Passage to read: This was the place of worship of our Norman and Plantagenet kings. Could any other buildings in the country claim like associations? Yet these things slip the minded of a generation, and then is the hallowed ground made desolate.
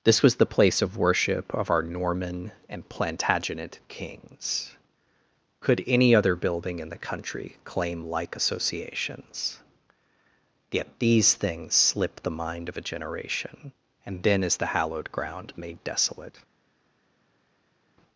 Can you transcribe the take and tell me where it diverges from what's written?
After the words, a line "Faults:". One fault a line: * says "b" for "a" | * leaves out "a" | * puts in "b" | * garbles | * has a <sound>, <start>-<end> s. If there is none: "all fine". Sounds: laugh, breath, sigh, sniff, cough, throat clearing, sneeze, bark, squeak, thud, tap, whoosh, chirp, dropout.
This was the place of worship of our Norman and Plantagenet kings. Could any other building in the country claim like associations? Yet these things slip the mind of a generation, and then is the hallowed ground made desolate.
Faults:
* says "building" for "buildings"
* says "mind" for "minded"